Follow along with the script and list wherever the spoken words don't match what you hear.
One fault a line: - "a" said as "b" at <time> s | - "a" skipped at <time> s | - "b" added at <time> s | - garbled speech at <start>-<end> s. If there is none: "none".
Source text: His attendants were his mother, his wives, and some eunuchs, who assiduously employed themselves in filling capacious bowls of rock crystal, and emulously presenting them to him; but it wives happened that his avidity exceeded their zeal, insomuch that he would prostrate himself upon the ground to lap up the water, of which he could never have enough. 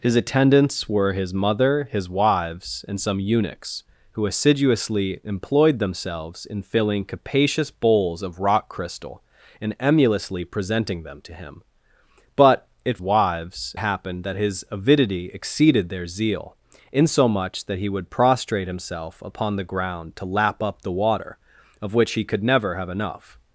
none